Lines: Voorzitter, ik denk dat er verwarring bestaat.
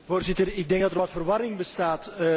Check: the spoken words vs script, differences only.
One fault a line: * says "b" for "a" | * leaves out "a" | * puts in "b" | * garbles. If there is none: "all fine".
* puts in "wat"